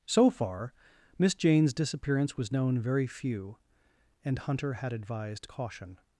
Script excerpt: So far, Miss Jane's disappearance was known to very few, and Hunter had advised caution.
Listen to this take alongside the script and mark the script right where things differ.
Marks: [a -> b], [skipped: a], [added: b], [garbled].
So far, Miss Jane's disappearance was known [skipped: to] very few, and Hunter had advised caution.